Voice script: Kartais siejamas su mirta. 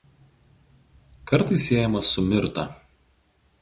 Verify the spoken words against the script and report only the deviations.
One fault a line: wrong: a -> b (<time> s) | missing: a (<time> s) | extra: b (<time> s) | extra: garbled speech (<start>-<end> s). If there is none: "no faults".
no faults